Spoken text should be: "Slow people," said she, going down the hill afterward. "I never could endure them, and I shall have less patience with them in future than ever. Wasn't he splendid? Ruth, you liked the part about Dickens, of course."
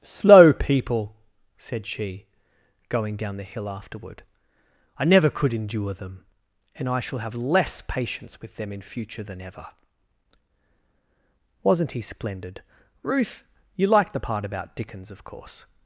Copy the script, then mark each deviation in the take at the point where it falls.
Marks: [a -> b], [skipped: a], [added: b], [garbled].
"Slow people," said she, going down the hill afterward. "I never could endure them, and I shall have less patience with them in future than ever. Wasn't he splendid? Ruth, you liked the part about Dickens, of course."